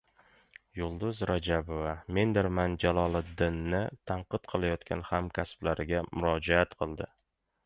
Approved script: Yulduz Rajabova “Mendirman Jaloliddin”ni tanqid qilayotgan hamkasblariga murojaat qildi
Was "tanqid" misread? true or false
false